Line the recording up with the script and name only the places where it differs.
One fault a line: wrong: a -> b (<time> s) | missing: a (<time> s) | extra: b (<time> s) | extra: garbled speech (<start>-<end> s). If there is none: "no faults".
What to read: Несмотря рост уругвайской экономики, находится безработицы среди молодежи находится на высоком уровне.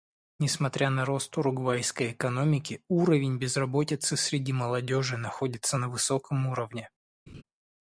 extra: на (0.9 s)
wrong: находится -> уровень (2.9 s)